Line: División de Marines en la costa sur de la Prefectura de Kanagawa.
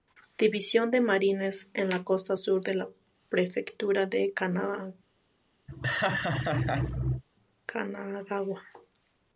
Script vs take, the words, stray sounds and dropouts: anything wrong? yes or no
yes